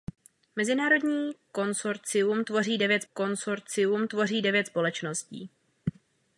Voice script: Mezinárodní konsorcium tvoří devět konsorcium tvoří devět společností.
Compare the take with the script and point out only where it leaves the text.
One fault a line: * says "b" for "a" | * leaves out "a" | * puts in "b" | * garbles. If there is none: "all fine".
all fine